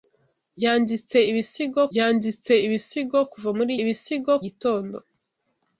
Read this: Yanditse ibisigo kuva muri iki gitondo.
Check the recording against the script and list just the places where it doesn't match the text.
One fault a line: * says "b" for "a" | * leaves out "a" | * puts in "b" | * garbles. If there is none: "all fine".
* puts in "yanditse ibisigo"
* says "ibisigo" for "iki"